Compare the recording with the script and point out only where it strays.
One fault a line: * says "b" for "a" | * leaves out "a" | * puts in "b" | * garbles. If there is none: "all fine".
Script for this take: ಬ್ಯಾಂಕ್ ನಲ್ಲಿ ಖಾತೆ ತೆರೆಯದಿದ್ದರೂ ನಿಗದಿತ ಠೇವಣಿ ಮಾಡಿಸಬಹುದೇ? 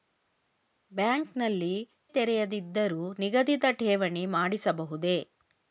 * leaves out "ಖಾತೆ"